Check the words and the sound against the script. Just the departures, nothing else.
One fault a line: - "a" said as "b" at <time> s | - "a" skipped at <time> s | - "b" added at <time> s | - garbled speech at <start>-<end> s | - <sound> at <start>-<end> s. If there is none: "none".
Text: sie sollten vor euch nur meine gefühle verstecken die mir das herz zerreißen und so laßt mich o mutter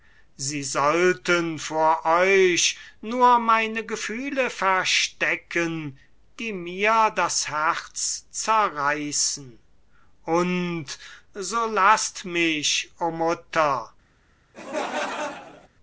- laugh at 14.5-15.7 s